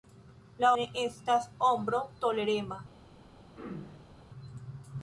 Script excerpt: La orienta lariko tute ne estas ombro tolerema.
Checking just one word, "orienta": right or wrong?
wrong